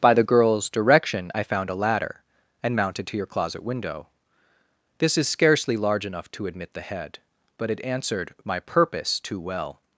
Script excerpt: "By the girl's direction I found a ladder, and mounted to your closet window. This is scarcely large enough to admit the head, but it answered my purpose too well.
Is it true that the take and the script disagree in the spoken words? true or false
false